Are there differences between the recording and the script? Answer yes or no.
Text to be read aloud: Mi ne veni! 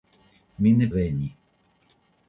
no